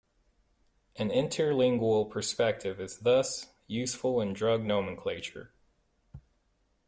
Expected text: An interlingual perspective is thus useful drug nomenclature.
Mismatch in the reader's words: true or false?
true